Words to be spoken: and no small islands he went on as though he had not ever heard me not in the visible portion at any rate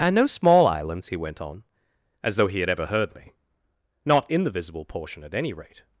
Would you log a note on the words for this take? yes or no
yes